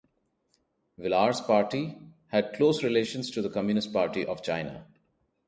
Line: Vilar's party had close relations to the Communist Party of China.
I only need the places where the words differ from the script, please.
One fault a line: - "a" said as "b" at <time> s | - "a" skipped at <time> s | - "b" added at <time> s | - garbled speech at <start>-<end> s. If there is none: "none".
none